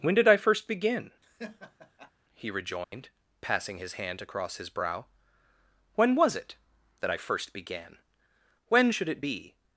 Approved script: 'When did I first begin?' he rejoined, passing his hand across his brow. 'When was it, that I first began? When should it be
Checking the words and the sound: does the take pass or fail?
fail